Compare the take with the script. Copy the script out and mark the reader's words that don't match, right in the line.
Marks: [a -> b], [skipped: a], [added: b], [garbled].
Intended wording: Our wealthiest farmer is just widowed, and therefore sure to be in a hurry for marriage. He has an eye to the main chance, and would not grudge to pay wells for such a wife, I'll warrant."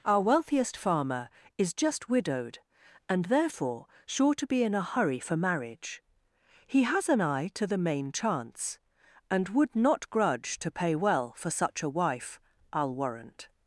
Our wealthiest farmer is just widowed, and therefore sure to be in a hurry for marriage. He has an eye to the main chance, and would not grudge to pay [wells -> well] for such a wife, I'll warrant."